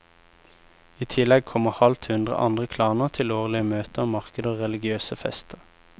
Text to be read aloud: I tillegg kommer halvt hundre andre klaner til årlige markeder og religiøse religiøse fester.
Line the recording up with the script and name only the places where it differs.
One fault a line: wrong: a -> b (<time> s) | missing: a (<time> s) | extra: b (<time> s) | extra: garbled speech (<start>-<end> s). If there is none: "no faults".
extra: møter (3.7 s)
missing: religiøse (5.2 s)